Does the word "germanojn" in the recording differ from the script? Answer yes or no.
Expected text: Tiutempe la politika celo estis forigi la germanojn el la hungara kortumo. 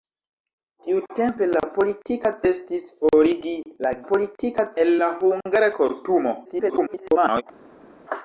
yes